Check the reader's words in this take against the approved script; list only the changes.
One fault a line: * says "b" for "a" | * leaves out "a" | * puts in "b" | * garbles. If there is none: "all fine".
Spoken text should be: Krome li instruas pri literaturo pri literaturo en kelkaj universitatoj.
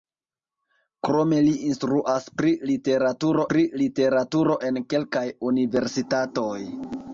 all fine